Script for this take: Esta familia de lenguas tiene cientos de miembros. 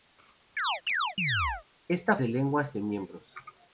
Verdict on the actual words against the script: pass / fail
fail